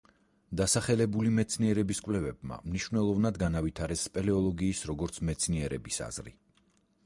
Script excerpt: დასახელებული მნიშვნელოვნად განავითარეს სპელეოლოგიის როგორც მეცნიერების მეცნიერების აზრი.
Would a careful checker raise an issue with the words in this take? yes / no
yes